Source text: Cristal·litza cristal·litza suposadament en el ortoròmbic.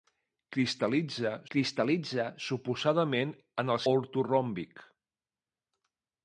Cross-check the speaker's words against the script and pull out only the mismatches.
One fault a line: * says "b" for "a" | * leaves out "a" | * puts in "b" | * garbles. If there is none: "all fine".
all fine